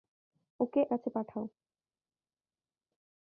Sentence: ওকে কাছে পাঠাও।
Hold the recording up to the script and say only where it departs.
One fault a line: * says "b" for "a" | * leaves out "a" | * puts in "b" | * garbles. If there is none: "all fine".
all fine